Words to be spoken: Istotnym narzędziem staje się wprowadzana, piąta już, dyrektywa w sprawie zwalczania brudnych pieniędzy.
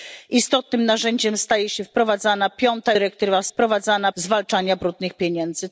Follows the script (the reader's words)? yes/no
no